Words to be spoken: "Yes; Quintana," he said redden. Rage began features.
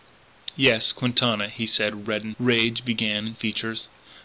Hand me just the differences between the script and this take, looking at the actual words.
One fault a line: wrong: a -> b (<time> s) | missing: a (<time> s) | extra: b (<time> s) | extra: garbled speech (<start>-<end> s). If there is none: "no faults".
no faults